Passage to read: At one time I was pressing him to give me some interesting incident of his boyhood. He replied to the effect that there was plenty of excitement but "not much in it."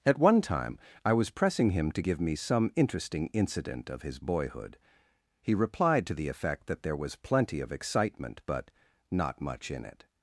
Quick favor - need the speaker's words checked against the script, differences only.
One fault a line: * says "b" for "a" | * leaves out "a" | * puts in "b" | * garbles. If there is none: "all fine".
all fine